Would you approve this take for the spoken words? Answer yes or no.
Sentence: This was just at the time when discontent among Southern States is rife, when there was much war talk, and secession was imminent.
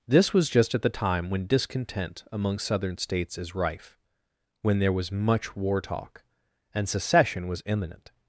yes